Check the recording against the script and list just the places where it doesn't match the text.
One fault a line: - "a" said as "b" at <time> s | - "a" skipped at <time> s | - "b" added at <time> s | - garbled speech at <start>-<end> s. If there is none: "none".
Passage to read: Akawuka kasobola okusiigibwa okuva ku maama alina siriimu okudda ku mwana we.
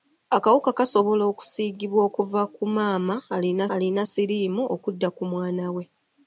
- "alina" added at 3.7 s